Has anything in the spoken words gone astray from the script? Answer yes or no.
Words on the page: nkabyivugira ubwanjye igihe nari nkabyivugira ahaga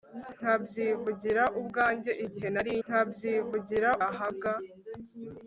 no